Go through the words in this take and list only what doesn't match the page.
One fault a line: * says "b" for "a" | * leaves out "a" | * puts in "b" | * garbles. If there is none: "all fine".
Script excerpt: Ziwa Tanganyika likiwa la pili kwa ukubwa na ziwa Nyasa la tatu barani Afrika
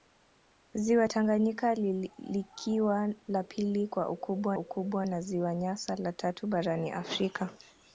* puts in "ukubwa"